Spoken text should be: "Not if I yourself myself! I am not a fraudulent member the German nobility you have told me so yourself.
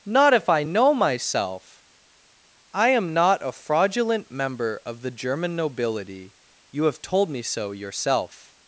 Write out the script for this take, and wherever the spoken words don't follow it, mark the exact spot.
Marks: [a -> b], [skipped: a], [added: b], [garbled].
"Not if I [yourself -> know] myself! I am not a fraudulent member [added: of] the German nobility you have told me so yourself.